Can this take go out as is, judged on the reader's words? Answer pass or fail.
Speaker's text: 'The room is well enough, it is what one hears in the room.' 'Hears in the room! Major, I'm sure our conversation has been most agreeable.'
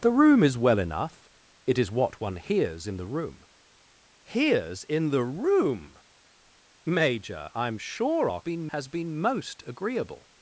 fail